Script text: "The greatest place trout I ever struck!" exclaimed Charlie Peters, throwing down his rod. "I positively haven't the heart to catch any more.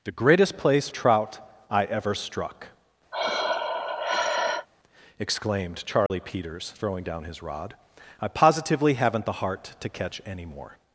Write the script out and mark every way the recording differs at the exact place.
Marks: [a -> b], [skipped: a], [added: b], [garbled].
"The greatest place trout I ever struck!" exclaimed Charlie Peters, throwing down his rod. "I positively haven't the heart to catch any more.